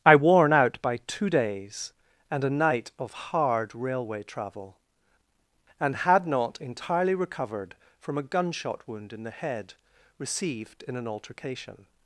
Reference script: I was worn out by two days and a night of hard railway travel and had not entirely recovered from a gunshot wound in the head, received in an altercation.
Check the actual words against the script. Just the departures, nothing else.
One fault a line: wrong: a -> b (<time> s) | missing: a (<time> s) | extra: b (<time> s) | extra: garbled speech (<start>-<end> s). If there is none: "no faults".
missing: was (0.1 s)